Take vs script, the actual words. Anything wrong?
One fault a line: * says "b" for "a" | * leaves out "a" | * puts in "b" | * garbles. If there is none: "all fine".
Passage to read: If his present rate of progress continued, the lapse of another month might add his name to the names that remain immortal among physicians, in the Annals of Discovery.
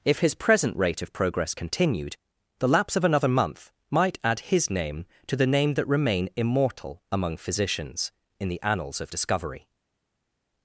* says "name" for "names"